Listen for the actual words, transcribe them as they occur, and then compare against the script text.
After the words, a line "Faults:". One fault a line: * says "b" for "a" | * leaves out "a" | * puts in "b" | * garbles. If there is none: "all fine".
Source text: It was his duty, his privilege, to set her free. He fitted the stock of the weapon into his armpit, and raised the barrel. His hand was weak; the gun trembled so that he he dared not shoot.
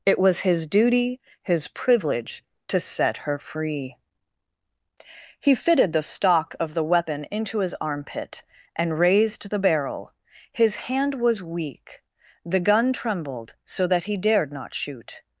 It was his duty, his privilege, to set her free. He fitted the stock of the weapon into his armpit, and raised the barrel. His hand was weak; the gun trembled so that he dared not shoot.
Faults:
* leaves out "he"